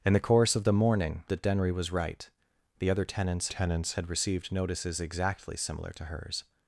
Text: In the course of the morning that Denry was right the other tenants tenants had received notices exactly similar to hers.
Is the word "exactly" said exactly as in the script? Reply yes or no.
yes